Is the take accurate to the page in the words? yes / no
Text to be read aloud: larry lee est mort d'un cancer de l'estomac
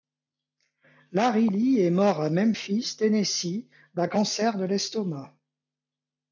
no